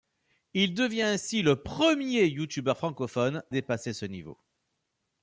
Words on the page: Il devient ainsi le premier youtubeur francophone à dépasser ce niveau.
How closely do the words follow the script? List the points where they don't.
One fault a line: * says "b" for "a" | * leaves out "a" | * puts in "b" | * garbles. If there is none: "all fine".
* leaves out "à"